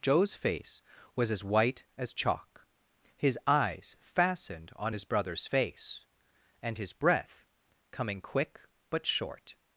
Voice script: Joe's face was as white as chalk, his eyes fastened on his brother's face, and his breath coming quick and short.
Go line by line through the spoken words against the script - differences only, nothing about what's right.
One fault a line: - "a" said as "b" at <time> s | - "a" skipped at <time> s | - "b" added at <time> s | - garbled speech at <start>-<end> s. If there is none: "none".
- "and" said as "but" at 8.9 s